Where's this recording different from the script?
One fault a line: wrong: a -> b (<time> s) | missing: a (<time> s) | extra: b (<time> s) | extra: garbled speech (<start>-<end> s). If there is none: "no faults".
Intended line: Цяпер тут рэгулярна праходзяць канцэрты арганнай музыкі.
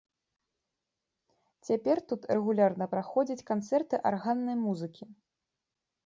no faults